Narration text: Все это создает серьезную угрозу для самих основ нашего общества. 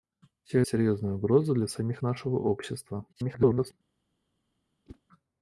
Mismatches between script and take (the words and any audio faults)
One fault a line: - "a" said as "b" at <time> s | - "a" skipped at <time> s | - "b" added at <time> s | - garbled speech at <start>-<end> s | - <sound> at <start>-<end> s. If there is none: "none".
- "это создает" skipped at 0.6 s
- "основ" skipped at 2.0 s
- garbled speech at 3.1-3.7 s
- whoosh at 4.9-5.0 s